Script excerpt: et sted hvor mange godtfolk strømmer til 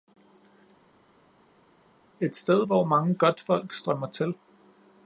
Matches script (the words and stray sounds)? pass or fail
pass